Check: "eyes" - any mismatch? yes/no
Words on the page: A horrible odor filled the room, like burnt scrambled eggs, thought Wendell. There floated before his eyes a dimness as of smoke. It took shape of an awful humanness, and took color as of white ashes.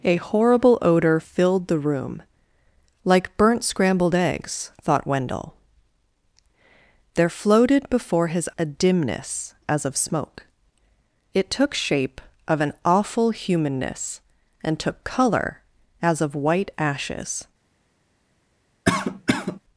yes